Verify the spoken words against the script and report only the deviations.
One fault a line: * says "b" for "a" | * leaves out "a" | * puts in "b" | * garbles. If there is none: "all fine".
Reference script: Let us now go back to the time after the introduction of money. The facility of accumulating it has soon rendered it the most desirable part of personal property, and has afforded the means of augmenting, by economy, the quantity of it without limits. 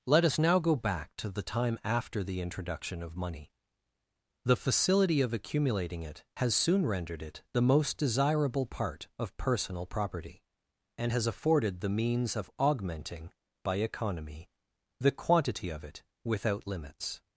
all fine